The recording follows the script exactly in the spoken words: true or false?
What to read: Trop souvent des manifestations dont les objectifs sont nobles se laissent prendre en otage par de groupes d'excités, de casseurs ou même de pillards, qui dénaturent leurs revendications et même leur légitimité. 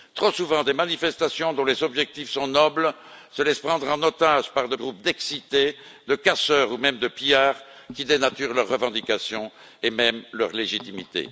true